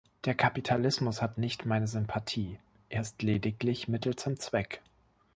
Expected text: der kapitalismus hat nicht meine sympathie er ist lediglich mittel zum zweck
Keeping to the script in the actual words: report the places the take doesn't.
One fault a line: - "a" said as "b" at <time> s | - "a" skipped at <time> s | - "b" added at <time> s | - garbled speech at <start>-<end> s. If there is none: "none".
none